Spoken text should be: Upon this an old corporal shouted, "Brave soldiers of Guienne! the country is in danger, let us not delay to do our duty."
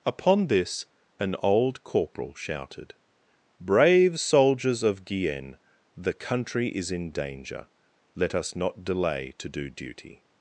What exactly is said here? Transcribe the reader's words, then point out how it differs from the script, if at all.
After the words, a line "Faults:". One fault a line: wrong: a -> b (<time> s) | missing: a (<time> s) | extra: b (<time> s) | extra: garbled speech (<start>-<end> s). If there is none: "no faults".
Upon this an old corporal shouted, "Brave soldiers of Guienne! the country is in danger, let us not delay to do duty."
Faults:
missing: our (9.7 s)